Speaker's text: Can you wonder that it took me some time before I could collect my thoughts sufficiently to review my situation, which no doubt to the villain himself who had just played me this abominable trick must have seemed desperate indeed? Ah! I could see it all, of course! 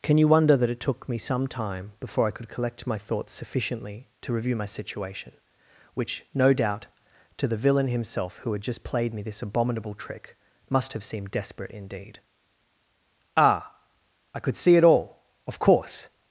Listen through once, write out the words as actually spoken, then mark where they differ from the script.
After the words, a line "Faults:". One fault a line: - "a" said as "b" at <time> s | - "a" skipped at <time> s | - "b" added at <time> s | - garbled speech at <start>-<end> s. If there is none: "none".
Can you wonder that it took me some time before I could collect my thoughts sufficiently to review my situation, which no doubt to the villain himself who had just played me this abominable trick must have seemed desperate indeed? Ah! I could see it all, of course!
Faults:
none